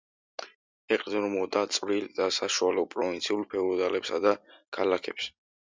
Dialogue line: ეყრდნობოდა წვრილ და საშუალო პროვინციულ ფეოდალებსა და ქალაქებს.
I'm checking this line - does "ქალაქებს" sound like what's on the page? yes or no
yes